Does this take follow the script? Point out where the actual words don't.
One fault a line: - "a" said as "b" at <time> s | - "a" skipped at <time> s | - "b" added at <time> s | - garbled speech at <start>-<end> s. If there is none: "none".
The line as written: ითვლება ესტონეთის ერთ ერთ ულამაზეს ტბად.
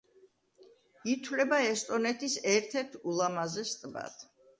none